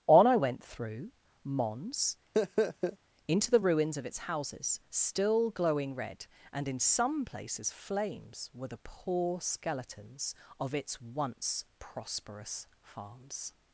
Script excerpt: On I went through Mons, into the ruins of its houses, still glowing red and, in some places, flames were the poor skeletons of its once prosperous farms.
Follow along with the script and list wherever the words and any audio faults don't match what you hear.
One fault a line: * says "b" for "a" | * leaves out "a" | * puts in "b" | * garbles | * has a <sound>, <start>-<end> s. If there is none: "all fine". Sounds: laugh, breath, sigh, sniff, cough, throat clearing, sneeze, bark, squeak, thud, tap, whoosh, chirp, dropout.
* has a laugh, 2.3-3.0 s